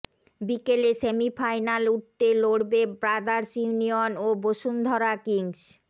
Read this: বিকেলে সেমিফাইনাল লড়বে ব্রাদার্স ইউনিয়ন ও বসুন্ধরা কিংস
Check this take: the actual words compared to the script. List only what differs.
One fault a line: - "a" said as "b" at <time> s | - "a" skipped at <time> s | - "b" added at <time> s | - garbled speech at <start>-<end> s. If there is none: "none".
- "উঠতে" added at 1.9 s